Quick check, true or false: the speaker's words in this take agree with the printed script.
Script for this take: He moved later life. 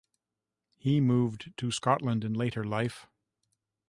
false